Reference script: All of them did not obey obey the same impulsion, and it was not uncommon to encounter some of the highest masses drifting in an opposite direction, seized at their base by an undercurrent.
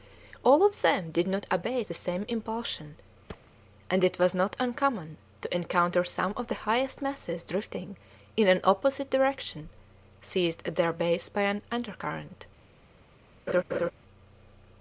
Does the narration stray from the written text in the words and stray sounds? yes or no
yes